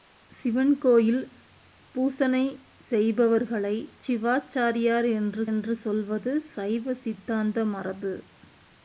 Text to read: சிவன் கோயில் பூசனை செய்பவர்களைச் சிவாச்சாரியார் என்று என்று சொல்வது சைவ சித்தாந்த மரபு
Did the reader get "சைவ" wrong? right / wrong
right